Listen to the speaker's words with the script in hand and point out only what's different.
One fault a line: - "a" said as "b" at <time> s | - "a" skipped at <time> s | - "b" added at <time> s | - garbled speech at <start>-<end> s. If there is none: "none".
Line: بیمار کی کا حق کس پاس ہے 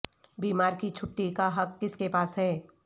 - "چھٹی" added at 0.9 s
- "کے" added at 1.9 s